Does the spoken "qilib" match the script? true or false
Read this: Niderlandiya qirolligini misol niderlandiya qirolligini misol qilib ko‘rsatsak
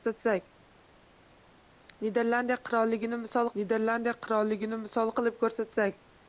true